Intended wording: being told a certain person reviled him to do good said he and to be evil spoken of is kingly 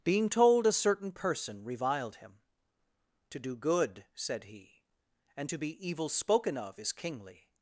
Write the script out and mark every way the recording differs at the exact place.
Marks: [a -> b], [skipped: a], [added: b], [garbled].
being told a certain person reviled him to do good said he and to be evil spoken of is kingly